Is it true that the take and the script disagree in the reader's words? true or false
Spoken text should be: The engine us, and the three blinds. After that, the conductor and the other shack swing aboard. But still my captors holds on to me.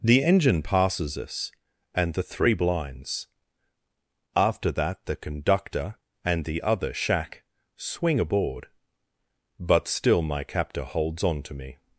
true